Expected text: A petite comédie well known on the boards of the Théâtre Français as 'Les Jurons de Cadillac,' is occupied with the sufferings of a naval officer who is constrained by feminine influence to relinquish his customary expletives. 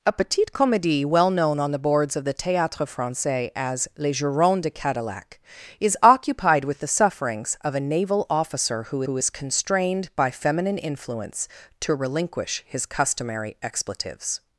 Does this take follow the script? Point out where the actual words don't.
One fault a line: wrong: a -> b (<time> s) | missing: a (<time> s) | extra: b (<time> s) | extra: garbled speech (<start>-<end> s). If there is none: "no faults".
extra: who (9.0 s)